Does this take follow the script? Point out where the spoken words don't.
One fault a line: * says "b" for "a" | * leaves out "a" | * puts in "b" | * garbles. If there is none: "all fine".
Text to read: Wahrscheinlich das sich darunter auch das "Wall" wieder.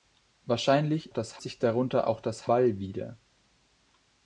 all fine